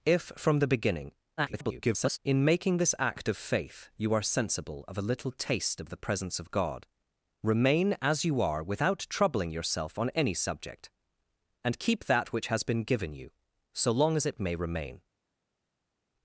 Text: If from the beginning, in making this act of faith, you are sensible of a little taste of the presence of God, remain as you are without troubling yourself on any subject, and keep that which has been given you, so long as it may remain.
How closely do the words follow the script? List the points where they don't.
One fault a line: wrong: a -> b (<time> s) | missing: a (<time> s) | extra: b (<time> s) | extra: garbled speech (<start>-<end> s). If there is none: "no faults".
extra: garbled speech (1.4-2.2 s)